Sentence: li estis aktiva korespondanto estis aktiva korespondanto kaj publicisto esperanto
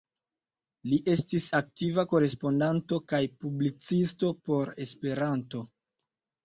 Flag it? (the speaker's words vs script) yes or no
yes